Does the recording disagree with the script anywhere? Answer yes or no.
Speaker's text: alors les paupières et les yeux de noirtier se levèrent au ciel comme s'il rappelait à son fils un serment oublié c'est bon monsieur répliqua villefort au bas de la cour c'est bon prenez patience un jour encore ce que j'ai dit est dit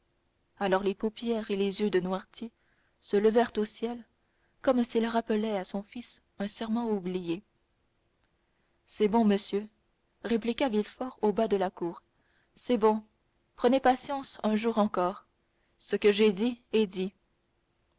no